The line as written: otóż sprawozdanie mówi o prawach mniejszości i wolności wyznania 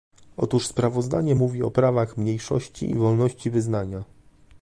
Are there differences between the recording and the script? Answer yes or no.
no